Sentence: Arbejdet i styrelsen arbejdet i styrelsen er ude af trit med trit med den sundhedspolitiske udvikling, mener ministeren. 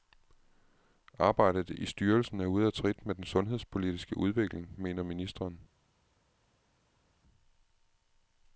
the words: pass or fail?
fail